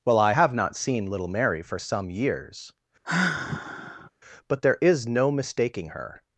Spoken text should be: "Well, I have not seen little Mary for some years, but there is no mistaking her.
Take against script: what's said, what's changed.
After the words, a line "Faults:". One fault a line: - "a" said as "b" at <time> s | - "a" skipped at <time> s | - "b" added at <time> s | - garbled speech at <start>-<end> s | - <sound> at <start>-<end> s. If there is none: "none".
"Well, I have not seen little Mary for some years, but there is no mistaking her.
Faults:
- sigh at 3.0-4.1 s